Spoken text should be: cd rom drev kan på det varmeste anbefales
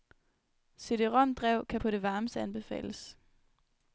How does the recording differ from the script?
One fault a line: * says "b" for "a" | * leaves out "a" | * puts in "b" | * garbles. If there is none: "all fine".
all fine